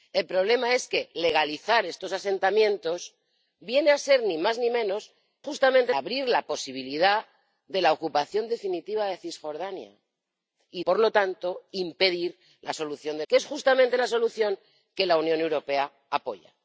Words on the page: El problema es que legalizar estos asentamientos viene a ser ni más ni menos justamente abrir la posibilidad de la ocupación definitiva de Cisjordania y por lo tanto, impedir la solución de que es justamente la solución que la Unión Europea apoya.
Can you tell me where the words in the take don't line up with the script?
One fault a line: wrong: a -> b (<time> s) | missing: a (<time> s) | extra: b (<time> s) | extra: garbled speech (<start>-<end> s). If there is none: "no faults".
no faults